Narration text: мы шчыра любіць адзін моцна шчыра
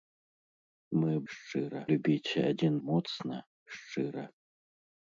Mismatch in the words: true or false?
false